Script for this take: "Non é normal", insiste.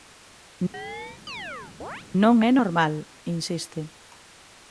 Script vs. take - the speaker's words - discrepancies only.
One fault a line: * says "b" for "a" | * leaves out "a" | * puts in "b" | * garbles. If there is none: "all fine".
all fine